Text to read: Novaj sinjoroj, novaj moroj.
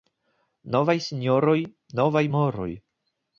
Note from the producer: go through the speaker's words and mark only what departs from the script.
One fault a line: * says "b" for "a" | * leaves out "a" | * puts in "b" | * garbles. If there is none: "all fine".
all fine